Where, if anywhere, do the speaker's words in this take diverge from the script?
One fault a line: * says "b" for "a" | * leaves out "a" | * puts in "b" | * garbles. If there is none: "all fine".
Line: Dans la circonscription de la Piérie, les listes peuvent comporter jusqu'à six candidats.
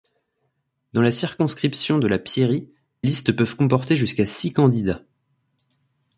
* leaves out "les"